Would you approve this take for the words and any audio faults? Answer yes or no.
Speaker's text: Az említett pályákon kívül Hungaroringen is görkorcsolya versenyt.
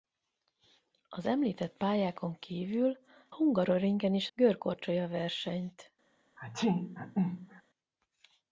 no